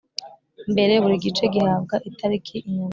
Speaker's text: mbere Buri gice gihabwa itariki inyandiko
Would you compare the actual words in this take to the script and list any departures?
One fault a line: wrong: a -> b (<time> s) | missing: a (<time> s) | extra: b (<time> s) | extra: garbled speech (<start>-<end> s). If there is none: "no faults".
no faults